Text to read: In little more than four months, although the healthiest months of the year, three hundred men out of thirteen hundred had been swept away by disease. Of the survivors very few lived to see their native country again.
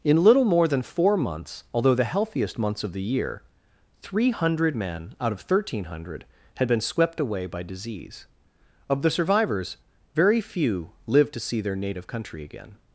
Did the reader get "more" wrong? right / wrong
right